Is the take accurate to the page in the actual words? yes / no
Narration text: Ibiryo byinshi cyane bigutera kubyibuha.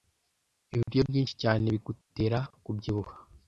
yes